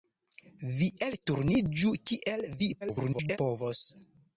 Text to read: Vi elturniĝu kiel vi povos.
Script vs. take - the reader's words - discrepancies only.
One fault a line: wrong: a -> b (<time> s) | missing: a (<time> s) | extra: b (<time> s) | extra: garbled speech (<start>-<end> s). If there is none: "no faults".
extra: garbled speech (2.8-3.4 s)